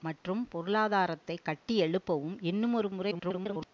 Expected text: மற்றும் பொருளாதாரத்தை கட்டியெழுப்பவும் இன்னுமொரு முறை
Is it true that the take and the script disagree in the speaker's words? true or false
true